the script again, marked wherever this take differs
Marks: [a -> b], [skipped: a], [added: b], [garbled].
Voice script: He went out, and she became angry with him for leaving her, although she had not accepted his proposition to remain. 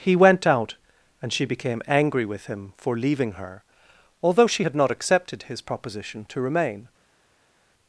He went out, and she became angry with him for leaving her, although she had not accepted his proposition to remain.